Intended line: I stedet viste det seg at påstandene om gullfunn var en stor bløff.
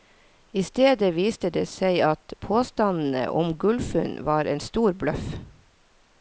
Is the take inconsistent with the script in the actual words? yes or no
no